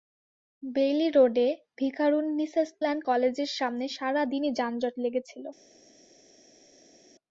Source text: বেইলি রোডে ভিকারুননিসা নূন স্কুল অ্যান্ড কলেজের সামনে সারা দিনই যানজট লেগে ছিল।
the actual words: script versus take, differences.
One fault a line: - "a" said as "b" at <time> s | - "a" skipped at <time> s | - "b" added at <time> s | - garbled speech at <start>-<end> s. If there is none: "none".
- "নূন স্কুল" skipped at 2.6 s